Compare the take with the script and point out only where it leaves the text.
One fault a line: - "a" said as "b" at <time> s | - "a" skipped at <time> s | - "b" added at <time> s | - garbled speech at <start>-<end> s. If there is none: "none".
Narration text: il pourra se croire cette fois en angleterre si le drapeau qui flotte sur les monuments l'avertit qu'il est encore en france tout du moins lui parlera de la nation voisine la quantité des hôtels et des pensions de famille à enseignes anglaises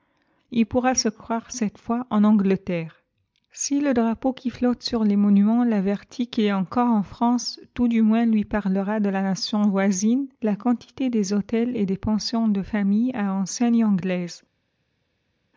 none